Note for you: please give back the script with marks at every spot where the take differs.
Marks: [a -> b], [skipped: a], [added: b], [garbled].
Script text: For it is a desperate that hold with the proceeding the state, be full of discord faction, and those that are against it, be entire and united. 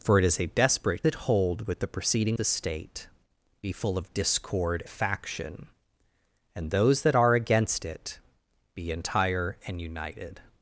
For it is a desperate that hold with the proceeding the state, be full of discord faction, and those that are against it, be entire and united.